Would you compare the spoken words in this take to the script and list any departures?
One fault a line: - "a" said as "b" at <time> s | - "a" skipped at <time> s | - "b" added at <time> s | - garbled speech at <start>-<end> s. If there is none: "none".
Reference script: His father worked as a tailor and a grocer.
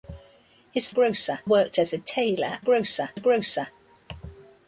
- "father" said as "grocer" at 0.9 s
- "and" said as "grocer" at 2.6 s